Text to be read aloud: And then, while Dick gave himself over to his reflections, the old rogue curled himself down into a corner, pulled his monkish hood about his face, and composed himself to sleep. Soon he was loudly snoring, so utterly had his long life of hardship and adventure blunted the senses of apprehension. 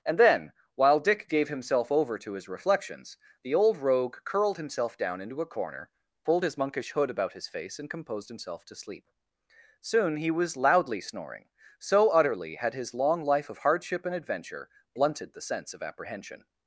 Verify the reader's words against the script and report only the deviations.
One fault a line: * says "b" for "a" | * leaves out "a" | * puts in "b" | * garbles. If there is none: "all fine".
* says "sense" for "senses"